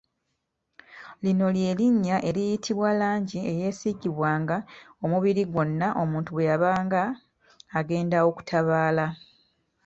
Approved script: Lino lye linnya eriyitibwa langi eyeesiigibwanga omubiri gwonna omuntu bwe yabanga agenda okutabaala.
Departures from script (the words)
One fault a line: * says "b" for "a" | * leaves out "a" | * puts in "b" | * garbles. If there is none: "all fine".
all fine